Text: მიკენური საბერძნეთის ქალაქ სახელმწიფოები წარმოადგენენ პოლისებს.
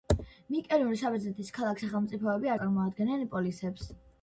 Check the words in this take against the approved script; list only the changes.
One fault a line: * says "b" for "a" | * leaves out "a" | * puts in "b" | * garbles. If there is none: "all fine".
all fine